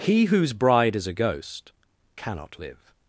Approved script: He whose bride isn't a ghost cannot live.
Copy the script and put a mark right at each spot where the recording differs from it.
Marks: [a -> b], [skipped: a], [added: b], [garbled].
He whose bride [isn't -> is] a ghost cannot live.